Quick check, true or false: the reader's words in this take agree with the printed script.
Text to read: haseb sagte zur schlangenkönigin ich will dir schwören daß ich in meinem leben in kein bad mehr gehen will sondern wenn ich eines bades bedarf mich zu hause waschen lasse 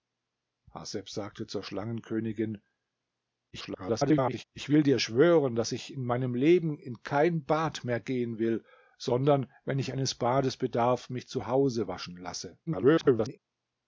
false